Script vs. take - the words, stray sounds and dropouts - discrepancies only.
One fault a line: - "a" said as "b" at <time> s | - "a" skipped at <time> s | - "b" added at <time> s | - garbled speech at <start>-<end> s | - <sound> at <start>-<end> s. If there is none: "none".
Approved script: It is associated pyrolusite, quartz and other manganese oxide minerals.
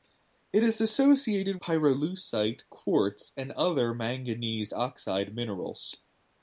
none